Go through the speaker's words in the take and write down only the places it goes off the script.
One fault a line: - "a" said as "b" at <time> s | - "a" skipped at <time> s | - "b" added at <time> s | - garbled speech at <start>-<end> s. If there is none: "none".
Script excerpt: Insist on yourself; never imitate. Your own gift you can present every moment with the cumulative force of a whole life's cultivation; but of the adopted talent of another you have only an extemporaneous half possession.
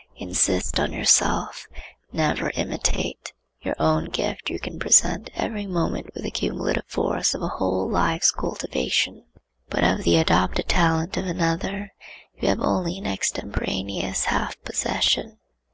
none